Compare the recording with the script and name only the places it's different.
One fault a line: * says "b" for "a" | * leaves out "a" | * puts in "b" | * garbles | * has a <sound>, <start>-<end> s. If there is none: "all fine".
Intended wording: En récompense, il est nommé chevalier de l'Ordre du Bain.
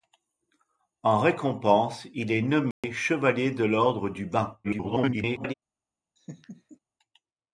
* has a dropout, 2.7-2.8 s
* garbles
* has a laugh, 6.2-6.8 s